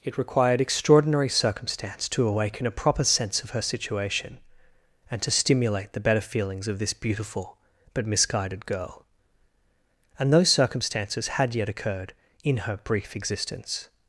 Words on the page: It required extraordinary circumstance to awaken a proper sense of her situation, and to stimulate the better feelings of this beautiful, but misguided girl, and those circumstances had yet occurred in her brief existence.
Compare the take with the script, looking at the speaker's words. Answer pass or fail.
pass